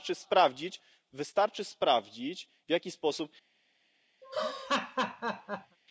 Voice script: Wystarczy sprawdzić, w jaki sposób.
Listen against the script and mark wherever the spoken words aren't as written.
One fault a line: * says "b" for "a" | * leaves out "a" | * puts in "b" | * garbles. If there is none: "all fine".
all fine